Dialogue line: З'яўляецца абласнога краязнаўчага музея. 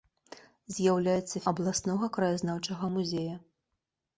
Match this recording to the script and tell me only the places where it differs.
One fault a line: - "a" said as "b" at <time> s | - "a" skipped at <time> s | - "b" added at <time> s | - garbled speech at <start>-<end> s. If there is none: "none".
none